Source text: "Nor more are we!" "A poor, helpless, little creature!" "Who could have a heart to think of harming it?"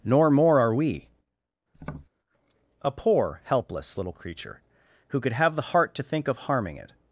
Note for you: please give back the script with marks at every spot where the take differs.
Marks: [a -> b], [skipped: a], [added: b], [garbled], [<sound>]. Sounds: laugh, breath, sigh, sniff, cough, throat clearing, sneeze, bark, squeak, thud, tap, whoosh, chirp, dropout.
"Nor more are we!" [tap] "A poor, helpless, little creature!" "Who could have [a -> the] heart to think of harming it?"